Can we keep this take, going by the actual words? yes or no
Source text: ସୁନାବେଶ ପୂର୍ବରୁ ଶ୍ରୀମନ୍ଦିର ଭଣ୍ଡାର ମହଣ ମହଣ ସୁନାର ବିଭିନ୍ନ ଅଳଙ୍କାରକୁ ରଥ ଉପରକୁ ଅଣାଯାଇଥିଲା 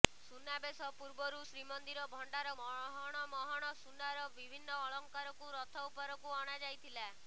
yes